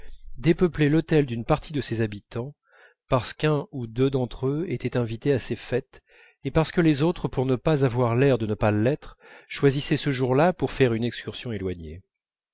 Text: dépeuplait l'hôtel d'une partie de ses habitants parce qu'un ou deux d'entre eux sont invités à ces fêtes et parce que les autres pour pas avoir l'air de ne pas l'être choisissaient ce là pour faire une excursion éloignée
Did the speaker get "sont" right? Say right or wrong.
wrong